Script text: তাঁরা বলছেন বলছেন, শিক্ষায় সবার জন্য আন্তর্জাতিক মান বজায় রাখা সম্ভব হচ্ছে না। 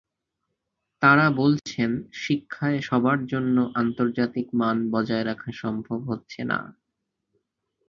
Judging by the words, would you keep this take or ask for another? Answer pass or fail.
fail